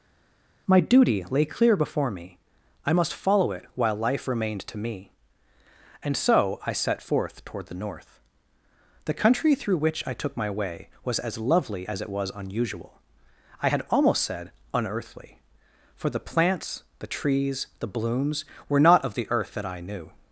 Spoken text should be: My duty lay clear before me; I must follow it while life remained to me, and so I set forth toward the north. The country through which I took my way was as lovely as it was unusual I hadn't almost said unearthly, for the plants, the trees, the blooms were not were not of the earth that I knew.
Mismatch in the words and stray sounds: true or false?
true